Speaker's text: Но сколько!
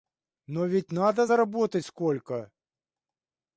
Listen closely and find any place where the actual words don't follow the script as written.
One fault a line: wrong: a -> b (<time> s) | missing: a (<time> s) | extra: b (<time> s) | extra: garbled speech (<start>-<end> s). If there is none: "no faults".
extra: ведь надо заработать (0.7 s)